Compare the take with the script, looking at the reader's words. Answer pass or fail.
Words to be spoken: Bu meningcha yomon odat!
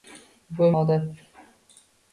fail